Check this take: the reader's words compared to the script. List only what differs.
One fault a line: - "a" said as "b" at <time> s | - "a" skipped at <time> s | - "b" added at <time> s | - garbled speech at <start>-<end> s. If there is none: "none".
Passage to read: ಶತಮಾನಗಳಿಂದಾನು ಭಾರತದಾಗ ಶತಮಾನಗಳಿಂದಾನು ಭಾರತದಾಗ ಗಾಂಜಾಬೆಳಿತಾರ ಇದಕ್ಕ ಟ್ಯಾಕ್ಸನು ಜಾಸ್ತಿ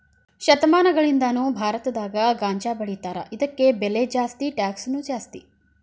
- "ಶತಮಾನಗಳಿಂದಾನು ಭಾರತದಾಗ ಗಾಂಜಾಬೆಳಿತಾರ ಇದಕ್ಕ" said as "ಗಾಂಜಾಬೆಳಿತಾರ ಇದಕ್ಕ ಬೆಲೆ ಜಾಸ್ತಿ" at 2.3 s